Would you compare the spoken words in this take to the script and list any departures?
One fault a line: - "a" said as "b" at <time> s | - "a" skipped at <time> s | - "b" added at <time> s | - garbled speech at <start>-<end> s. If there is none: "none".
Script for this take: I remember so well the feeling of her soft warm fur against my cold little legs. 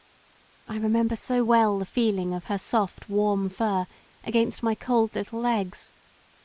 none